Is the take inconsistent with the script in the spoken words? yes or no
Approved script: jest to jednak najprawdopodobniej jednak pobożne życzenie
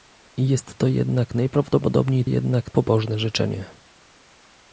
no